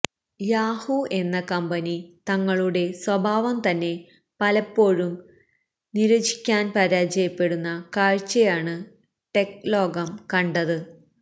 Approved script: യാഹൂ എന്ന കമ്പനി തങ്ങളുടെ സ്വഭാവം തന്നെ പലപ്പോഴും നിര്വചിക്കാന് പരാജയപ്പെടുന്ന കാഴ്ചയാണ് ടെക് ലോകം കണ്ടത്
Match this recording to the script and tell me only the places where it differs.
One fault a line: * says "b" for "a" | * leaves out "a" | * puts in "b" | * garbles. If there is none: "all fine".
all fine